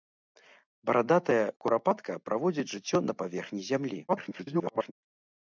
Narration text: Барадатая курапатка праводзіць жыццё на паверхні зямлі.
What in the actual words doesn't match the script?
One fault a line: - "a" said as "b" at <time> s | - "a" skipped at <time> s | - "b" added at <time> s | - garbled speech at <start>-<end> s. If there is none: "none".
- garbled speech at 4.1-4.9 s